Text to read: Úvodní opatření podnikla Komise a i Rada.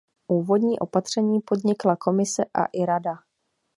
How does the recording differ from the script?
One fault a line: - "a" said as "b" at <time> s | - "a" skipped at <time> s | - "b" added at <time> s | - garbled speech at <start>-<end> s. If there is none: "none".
none